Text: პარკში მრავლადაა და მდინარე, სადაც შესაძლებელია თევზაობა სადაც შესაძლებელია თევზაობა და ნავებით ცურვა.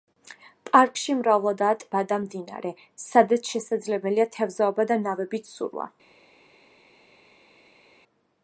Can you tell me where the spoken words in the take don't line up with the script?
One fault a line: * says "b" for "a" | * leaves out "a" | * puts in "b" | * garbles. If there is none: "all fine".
* puts in "ტბა"
* leaves out "სადაც შესაძლებელია თევზაობა"